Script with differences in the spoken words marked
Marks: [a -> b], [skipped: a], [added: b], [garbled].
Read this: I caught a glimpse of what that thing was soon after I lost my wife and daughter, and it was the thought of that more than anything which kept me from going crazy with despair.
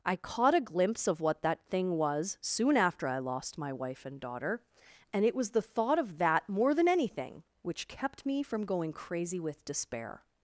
I caught a glimpse of what that thing was soon after I lost my wife and daughter, and it was the thought of that more than anything which kept me from going crazy with despair.